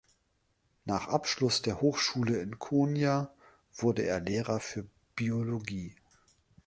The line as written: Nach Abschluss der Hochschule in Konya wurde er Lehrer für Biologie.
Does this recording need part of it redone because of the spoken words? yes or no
no